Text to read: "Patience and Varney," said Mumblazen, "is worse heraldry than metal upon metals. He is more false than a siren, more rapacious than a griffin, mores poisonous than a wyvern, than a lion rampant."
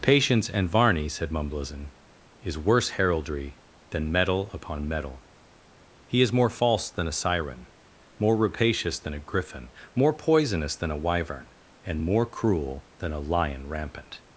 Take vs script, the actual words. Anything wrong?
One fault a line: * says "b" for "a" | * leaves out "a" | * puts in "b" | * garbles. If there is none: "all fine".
* says "metal" for "metals"
* says "more" for "mores"
* puts in "and more cruel"